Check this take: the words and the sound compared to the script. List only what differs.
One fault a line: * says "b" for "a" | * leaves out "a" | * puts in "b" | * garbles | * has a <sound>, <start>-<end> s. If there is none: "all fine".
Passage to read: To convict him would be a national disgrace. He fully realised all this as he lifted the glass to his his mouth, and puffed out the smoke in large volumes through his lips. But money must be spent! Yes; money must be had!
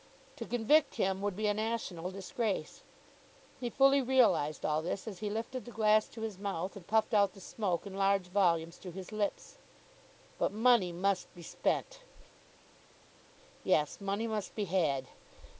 * leaves out "his"